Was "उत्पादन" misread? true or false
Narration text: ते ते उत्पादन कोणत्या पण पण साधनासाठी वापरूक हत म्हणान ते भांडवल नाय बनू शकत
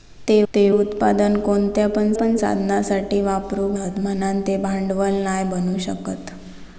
false